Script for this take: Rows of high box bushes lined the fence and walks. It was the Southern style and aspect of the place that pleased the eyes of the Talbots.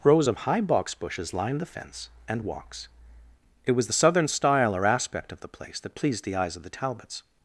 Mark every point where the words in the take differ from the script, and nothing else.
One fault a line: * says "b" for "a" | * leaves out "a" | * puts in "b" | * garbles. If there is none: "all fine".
* says "or" for "and"